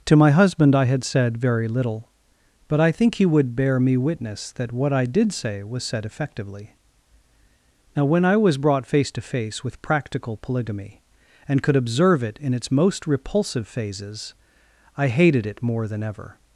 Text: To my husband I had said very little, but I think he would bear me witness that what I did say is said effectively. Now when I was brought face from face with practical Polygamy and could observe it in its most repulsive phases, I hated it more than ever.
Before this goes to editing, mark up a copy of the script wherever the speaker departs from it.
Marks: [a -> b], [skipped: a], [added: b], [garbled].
To my husband I had said very little, but I think he would bear me witness that what I did say [is -> was] said effectively. Now when I was brought face [from -> to] face with practical Polygamy and could observe it in its most repulsive phases, I hated it more than ever.